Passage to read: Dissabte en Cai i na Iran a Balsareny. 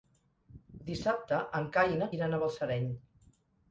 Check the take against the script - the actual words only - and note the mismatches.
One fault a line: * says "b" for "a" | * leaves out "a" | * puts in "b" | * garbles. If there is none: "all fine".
all fine